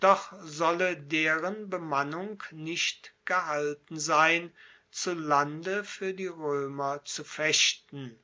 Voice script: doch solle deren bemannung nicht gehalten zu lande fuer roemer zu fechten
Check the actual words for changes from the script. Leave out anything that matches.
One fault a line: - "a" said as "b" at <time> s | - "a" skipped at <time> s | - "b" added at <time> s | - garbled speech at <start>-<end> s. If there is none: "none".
- "sein" added at 4.0 s
- "die" added at 6.1 s